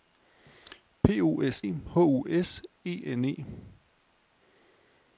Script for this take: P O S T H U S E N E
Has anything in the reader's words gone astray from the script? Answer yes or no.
yes